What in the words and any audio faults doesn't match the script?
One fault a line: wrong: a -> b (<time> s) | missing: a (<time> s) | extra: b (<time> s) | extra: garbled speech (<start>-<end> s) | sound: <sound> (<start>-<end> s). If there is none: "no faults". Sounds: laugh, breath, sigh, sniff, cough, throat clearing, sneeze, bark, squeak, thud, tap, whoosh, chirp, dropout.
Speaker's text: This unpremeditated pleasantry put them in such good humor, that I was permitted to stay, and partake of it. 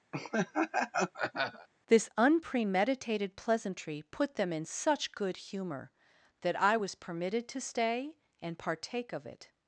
sound: laugh (0.1-1.7 s)